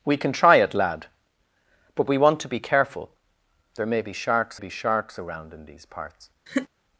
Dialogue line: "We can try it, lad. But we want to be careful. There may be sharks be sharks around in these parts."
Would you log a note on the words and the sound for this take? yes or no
yes